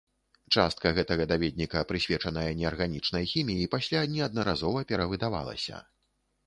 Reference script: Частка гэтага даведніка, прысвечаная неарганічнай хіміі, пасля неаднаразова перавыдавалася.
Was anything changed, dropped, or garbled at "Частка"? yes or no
no